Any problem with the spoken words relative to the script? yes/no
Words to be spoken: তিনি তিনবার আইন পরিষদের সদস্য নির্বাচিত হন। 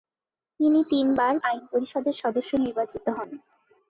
no